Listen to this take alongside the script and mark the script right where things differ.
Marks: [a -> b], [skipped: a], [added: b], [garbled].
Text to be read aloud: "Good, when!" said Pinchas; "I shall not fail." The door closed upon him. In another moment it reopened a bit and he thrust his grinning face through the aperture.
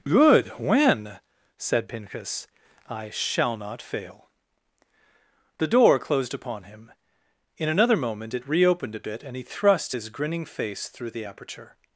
"Good, when!" said Pinchas; "I shall not fail." The door closed upon him. In another moment it reopened a bit and he thrust his grinning face through the aperture.